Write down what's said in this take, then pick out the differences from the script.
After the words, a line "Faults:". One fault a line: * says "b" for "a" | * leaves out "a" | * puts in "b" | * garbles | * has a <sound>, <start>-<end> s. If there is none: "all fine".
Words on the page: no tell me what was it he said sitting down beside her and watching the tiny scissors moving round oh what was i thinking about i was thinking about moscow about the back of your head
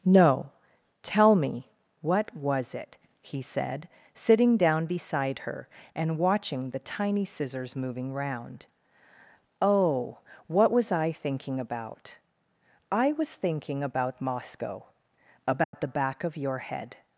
no tell me what was it he said sitting down beside her and watching the tiny scissors moving round oh what was i thinking about i was thinking about moscow about the back of your head
Faults:
* has a dropout, 15.6-15.7 s